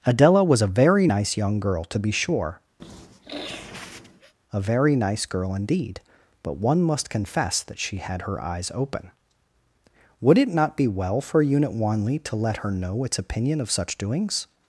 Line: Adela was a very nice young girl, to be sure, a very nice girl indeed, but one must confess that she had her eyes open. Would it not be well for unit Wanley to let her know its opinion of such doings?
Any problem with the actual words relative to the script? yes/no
no